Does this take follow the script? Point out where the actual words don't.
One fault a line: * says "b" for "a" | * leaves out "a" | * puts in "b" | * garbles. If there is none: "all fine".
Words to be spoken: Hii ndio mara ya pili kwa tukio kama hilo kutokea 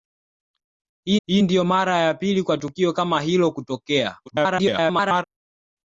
* puts in "hii"
* garbles